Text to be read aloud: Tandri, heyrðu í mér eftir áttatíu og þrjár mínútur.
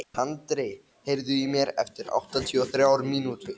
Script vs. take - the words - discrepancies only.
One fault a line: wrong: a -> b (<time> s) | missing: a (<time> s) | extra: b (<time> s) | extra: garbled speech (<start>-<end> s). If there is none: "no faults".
no faults